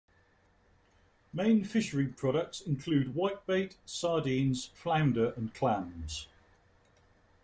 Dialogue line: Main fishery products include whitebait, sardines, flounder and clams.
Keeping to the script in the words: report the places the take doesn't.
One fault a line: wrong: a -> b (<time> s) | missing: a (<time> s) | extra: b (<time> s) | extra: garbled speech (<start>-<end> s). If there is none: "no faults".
no faults